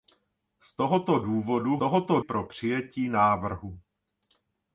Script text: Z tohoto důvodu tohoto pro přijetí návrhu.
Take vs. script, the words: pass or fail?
pass